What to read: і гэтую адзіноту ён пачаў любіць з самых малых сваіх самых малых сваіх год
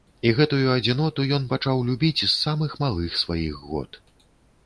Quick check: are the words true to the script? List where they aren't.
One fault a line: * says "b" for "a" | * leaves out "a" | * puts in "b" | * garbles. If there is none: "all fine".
* leaves out "самых малых сваіх"